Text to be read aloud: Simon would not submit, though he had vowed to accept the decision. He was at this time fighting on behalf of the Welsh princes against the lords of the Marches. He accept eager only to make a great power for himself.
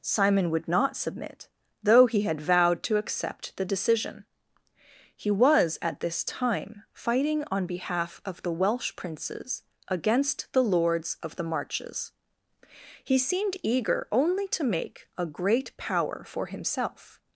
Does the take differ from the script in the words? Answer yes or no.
yes